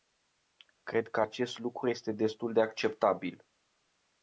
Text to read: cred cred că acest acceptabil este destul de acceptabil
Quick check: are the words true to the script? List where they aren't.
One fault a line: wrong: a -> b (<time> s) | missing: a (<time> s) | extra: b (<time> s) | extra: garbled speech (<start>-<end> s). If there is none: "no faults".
missing: cred (1.1 s)
wrong: acceptabil -> lucru (1.6 s)